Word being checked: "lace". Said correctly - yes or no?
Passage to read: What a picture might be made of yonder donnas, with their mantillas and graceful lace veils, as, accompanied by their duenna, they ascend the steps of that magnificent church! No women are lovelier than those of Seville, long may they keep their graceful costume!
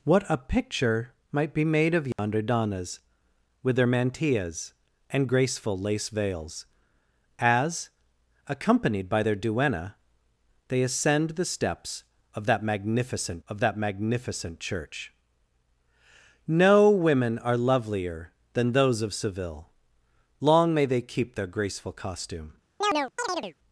yes